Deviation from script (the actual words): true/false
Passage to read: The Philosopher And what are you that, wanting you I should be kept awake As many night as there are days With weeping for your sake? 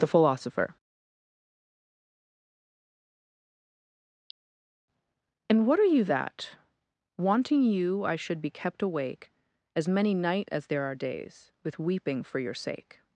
false